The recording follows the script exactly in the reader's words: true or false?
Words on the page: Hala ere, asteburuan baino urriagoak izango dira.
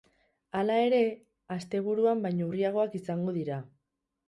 true